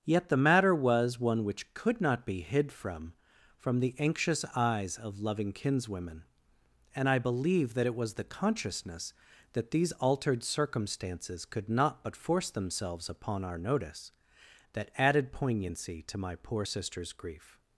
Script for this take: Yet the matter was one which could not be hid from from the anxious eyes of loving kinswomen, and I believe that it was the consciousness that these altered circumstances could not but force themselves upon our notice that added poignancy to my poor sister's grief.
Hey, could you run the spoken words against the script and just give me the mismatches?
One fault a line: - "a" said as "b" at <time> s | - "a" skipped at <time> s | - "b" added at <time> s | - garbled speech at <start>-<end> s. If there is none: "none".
none